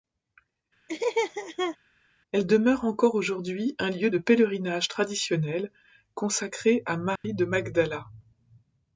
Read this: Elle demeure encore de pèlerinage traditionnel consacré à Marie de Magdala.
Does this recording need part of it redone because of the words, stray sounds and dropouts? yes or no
yes